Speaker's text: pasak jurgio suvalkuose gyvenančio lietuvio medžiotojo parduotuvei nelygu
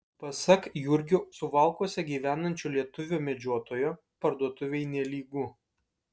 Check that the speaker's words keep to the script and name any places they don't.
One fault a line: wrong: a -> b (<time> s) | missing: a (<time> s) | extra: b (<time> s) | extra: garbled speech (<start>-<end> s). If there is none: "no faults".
no faults